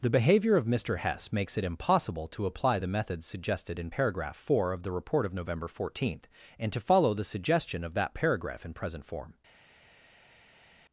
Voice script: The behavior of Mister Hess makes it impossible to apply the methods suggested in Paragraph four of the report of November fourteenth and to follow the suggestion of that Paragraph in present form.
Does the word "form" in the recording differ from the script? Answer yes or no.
no